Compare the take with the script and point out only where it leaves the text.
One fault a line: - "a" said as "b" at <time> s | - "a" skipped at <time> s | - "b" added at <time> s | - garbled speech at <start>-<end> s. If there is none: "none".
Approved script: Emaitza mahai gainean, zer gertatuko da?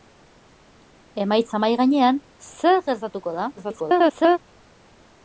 - garbled speech at 3.6-4.4 s